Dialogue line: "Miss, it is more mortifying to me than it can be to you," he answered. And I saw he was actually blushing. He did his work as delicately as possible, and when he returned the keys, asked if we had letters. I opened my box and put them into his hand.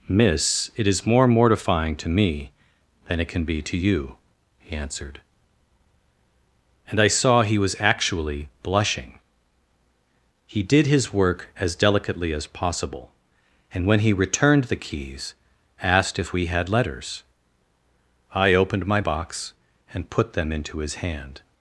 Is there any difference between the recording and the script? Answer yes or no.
no